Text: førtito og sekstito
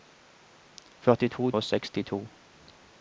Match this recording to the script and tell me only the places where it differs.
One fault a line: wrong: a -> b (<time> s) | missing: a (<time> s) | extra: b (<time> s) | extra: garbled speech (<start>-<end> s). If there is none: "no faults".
no faults